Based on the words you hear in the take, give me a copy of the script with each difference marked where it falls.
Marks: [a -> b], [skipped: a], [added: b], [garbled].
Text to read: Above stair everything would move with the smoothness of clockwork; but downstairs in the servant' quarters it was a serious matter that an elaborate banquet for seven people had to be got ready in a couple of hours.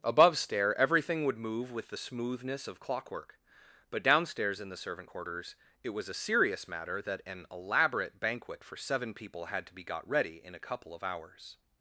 Above stair everything would move with the smoothness of clockwork; but downstairs in the servant' quarters it was a serious matter that an elaborate banquet for seven people had to be got ready in a couple of hours.